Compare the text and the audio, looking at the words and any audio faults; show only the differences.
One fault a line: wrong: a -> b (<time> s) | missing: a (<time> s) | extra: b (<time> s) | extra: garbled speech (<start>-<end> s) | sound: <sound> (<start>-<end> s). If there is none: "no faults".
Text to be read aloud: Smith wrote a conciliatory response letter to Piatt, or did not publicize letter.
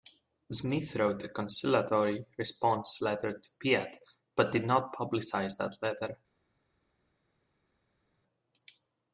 wrong: or -> but (4.3 s)
extra: that (5.6 s)